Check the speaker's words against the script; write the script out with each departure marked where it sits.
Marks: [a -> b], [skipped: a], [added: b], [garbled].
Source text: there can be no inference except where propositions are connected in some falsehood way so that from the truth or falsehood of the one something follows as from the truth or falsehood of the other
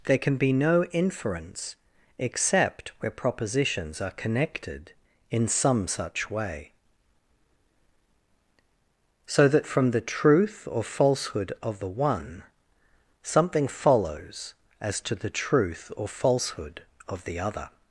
there can be no inference except where propositions are connected in some [falsehood -> such] way so that from the truth or falsehood of the one something follows as [from -> to] the truth or falsehood of the other